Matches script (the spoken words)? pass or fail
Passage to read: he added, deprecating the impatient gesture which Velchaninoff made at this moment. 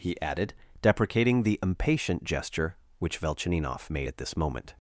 pass